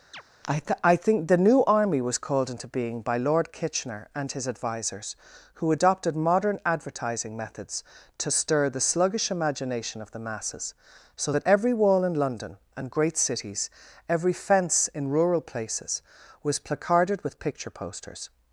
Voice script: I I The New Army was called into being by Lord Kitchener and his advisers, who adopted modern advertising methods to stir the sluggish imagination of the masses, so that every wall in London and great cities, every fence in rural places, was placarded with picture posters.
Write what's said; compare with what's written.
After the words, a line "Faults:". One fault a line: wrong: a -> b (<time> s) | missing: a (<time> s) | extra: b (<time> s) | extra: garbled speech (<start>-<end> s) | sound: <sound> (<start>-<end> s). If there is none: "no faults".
I th I think The New Army was called into being by Lord Kitchener and his advisers, who adopted modern advertising methods to stir the sluggish imagination of the masses, so that every wall in London and great cities, every fence in rural places, was placarded with picture posters.
Faults:
sound: chirp (0.1-0.2 s)
extra: th (0.6 s)
extra: think (1.0 s)